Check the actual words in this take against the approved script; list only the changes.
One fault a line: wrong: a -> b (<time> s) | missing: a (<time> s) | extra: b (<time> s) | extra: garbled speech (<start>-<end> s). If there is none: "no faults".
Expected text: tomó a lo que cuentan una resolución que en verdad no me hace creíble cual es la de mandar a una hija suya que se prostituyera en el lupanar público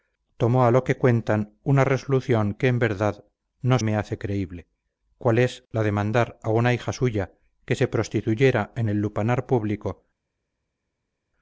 no faults